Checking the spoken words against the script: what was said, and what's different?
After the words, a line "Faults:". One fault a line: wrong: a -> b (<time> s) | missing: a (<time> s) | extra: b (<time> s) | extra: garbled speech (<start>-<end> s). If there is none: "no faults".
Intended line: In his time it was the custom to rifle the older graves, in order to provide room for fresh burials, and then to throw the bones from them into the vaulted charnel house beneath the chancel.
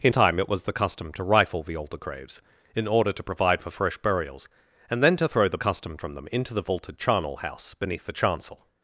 In time it was the custom to rifle the older graves, in order to provide for fresh burials, and then to throw the custom from them into the vaulted charnel house beneath the chancel.
Faults:
missing: his (0.1 s)
missing: room (3.6 s)
wrong: bones -> custom (5.6 s)